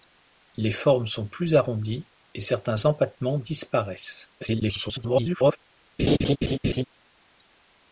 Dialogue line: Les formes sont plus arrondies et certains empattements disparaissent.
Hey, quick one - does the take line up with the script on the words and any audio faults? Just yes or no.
no